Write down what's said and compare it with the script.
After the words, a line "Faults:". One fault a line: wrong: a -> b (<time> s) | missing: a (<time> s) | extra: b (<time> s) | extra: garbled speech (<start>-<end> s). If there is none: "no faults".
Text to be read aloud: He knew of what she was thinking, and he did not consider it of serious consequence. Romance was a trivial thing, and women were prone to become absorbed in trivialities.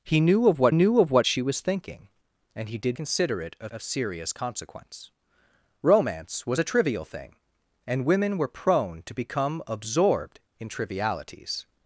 He knew of what knew of what she was thinking, and he did consider it of of serious consequence. Romance was a trivial thing, and women were prone to become absorbed in trivialities.
Faults:
extra: knew of what (0.7 s)
missing: not (3.0 s)
extra: of (3.7 s)